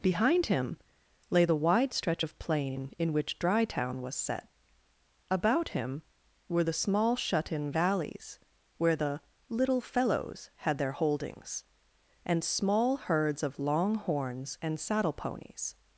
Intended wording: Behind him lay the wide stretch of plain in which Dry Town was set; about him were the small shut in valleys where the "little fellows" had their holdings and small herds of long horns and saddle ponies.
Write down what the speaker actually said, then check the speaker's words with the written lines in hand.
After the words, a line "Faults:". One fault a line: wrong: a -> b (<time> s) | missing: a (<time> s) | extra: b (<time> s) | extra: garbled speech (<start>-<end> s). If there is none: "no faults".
Behind him lay the wide stretch of plain in which Dry Town was set; about him were the small shut in valleys where the "little fellows" had their holdings and small herds of long horns and saddle ponies.
Faults:
no faults